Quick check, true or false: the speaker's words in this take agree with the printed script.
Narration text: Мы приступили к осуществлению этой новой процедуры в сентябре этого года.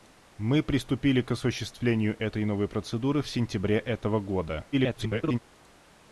false